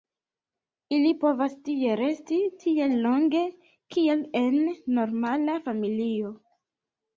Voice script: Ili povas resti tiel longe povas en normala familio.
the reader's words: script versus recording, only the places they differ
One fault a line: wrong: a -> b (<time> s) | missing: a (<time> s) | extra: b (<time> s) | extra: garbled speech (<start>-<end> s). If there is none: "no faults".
extra: tie (1.7 s)
wrong: povas -> kiel (4.0 s)